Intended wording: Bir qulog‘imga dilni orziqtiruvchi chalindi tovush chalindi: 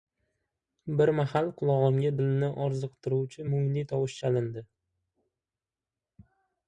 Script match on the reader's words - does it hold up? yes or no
no